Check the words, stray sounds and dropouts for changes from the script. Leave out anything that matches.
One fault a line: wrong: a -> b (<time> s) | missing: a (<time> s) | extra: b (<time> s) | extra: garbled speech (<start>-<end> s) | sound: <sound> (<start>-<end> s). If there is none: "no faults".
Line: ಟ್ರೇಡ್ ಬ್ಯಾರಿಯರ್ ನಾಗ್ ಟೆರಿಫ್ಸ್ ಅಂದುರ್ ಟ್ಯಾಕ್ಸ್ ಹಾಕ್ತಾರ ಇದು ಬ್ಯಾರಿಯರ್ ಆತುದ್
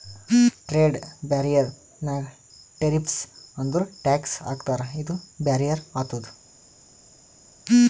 no faults